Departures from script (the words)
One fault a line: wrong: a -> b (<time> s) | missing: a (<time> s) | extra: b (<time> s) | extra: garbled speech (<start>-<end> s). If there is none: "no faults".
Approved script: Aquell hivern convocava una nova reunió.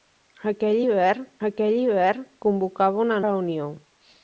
extra: aquell hivern (1.5 s)
missing: nova (3.2 s)